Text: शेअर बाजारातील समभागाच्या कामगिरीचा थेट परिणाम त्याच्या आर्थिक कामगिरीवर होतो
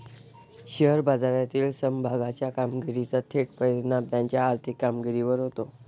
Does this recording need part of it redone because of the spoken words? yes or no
no